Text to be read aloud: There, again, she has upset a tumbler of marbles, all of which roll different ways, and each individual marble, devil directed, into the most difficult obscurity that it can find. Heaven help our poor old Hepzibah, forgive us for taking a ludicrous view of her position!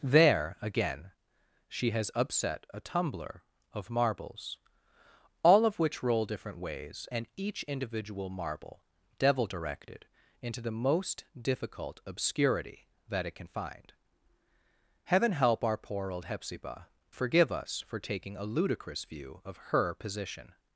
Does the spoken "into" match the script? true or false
true